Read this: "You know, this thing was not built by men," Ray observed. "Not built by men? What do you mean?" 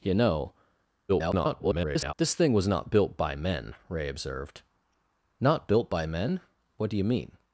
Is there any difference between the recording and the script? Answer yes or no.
yes